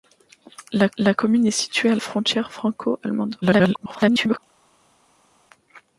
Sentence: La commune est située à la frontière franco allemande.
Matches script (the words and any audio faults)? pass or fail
fail